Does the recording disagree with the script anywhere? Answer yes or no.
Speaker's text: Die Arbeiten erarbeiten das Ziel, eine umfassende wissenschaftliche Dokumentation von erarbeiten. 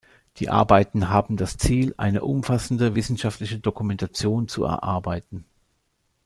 yes